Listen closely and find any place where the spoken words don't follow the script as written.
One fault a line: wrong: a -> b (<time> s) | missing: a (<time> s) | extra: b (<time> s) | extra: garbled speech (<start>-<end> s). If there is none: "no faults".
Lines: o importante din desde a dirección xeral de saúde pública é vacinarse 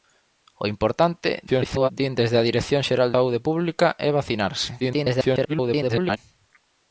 extra: garbled speech (1.5-1.9 s)
missing: de (3.1 s)
extra: garbled speech (4.8-6.2 s)